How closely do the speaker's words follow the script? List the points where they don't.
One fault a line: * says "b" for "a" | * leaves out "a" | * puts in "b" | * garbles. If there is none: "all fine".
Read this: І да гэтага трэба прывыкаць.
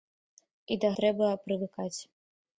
* leaves out "гэтага"